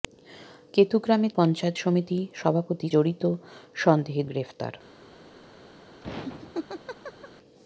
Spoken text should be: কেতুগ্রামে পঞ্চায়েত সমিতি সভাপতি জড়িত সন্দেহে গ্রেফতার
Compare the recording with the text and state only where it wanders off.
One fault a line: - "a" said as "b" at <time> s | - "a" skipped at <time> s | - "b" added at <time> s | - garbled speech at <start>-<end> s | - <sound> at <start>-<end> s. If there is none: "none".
- laugh at 6.0-7.3 s